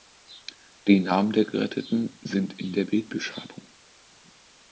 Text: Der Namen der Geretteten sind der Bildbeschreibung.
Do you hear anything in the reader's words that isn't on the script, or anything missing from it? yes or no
yes